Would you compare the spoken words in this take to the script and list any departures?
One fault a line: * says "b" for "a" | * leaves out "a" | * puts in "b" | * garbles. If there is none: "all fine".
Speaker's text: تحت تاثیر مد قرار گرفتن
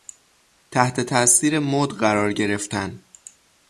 all fine